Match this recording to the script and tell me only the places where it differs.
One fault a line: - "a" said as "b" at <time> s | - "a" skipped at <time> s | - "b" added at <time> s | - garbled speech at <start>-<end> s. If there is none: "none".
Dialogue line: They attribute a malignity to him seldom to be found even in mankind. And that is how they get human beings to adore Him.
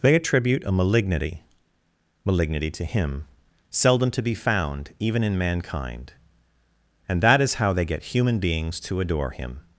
- "malignity" added at 2.2 s